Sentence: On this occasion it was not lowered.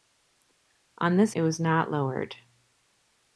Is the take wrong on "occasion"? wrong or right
wrong